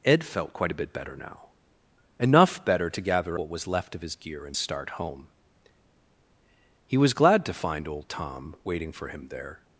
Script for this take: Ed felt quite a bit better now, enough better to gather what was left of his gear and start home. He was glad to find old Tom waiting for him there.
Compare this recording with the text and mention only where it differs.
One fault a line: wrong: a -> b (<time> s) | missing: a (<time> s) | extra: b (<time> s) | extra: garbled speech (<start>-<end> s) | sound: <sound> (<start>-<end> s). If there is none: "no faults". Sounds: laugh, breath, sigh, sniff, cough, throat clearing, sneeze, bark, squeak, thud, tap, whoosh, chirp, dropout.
no faults